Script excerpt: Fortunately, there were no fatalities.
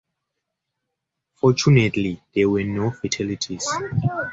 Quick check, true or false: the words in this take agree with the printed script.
true